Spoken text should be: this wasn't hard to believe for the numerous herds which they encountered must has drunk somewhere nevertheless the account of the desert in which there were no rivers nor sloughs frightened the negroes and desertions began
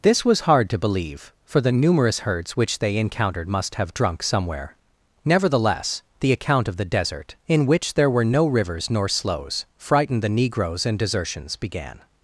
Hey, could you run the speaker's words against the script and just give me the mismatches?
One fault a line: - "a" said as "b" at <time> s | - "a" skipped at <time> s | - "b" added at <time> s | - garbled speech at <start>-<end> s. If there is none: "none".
- "wasn't" said as "was" at 0.2 s
- "has" said as "have" at 3.7 s